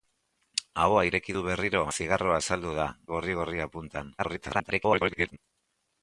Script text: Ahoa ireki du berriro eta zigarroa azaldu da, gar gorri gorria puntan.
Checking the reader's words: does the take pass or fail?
fail